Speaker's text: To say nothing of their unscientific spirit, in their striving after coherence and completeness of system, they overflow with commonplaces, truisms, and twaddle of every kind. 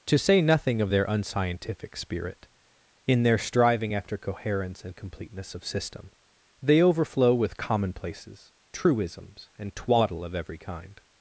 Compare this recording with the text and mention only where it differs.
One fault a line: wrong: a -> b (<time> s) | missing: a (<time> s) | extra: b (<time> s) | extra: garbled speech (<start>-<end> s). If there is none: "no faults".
no faults